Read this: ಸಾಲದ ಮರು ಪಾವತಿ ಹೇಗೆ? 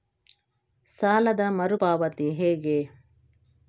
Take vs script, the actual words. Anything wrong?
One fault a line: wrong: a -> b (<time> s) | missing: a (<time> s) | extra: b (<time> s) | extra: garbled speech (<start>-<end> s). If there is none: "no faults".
no faults